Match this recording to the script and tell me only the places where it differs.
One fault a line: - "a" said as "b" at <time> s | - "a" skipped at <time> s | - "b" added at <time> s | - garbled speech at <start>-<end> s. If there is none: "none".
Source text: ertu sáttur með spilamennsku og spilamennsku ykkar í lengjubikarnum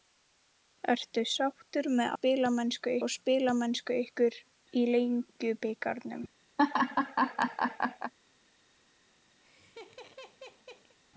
none